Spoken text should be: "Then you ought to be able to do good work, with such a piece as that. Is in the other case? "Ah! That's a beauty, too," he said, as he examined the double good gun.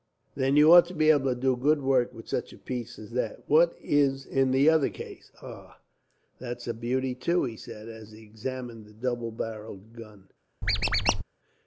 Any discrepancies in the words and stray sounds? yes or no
yes